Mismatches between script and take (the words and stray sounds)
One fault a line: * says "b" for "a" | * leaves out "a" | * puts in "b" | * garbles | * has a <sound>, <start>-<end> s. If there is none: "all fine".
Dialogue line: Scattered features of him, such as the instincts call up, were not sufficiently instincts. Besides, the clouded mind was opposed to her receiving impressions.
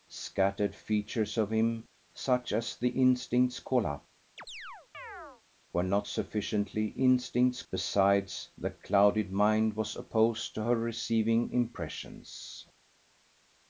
* has a chirp, 4.4-5.4 s